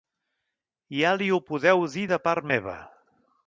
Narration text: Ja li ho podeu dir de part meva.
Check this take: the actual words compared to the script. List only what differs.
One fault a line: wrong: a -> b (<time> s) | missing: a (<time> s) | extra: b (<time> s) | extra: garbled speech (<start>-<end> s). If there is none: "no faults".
no faults